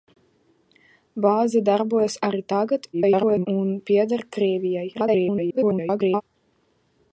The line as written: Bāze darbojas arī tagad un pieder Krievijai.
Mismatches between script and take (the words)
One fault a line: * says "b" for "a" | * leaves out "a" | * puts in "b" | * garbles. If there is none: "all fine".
* garbles
* garbles